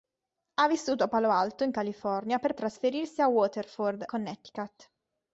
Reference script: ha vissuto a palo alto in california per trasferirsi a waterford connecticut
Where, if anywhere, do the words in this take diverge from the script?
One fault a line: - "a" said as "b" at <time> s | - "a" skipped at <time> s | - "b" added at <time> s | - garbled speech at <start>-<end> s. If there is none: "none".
none